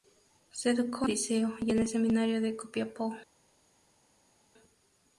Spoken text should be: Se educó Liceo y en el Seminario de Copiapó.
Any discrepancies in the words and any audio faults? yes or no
no